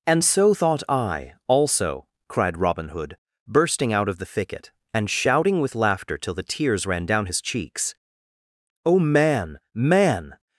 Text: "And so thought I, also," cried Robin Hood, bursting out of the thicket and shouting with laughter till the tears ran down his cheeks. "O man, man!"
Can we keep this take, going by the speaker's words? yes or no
yes